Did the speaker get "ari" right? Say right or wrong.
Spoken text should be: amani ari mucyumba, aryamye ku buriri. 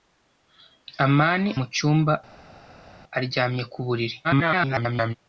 wrong